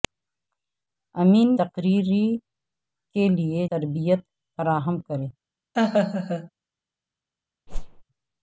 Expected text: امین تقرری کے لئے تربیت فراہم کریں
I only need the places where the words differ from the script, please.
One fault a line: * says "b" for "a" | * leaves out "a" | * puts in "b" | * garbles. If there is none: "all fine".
all fine